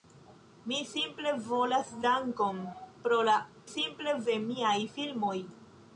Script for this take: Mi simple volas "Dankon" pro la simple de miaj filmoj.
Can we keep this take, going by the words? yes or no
yes